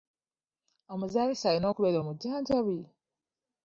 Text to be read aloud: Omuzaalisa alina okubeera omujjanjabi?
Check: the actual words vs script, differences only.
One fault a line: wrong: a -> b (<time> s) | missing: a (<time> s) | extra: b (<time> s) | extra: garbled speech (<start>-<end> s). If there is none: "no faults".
no faults